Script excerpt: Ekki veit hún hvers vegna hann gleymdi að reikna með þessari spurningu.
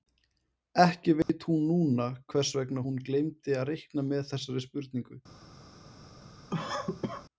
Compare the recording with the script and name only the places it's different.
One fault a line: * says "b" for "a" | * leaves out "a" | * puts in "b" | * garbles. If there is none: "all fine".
* puts in "núna"
* says "hún" for "hann"